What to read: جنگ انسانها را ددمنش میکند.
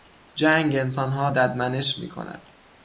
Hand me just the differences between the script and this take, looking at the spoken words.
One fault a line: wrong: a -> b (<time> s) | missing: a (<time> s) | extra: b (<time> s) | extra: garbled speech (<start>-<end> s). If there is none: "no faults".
missing: را (1.3 s)